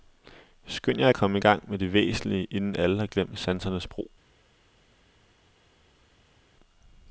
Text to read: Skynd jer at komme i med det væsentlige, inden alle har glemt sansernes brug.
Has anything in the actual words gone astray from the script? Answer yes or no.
yes